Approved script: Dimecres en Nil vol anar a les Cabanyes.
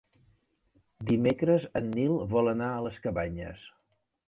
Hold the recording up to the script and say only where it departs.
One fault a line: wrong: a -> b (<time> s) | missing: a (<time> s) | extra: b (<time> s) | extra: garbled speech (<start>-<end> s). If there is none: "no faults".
no faults